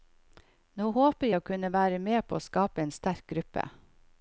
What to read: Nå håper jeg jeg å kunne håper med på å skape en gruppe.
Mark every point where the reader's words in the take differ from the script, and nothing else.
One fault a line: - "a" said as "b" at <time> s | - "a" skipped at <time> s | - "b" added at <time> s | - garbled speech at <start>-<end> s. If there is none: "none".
- "jeg" skipped at 1.4 s
- "håper" said as "være" at 1.7 s
- "sterk" added at 2.9 s